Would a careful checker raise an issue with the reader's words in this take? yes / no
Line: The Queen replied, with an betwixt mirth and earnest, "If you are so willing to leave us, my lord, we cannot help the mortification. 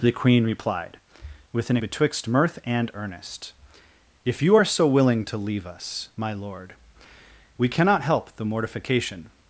no